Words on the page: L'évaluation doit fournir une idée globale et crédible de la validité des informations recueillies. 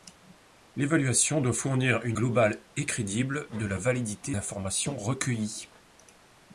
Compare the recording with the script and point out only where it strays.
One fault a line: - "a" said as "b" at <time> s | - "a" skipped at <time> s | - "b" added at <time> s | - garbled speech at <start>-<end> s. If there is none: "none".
- "idée" skipped at 2.2 s
- "des" skipped at 4.4 s